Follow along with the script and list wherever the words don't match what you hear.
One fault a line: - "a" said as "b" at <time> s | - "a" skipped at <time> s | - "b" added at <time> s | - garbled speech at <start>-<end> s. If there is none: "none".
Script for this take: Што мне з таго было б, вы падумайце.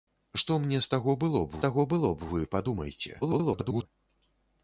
- "таго было б" added at 1.6 s
- garbled speech at 3.2-3.9 s